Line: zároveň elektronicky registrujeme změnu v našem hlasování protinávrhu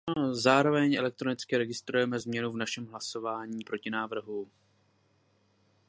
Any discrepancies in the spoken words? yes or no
no